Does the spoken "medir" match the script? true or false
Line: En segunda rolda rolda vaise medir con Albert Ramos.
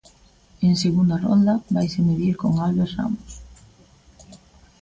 true